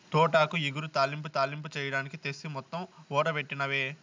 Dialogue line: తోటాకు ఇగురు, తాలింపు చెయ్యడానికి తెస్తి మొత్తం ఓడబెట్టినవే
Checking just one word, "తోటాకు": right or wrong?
right